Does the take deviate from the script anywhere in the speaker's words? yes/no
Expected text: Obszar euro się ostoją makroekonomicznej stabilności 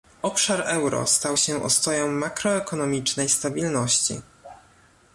yes